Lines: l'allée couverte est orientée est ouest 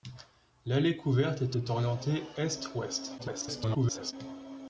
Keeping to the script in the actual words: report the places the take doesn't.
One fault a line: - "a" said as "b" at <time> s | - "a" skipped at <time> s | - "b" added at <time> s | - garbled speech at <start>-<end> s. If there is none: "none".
- "est" added at 1.6 s
- garbled speech at 3.2-4.1 s